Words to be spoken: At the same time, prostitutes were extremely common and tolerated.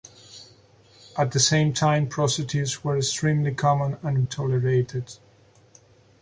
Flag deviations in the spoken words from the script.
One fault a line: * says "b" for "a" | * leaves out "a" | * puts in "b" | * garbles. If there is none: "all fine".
all fine